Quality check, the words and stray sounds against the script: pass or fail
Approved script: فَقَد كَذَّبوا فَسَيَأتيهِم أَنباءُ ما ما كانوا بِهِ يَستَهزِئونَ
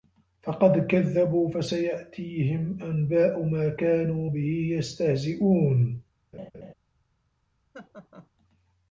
fail